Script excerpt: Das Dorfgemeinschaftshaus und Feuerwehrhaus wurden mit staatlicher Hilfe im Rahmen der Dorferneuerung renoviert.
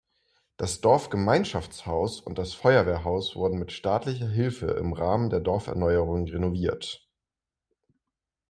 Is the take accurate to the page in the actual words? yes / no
no